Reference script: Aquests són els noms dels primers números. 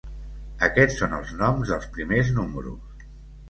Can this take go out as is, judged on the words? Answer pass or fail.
pass